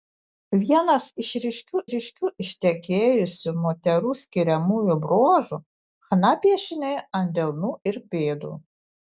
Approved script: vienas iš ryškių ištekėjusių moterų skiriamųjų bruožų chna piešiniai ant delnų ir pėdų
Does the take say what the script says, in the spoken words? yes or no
no